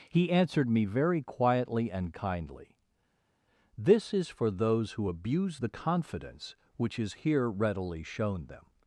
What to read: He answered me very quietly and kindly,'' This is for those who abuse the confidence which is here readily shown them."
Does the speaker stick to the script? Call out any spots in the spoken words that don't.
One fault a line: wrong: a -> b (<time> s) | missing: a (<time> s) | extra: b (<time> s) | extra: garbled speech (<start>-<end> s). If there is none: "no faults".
no faults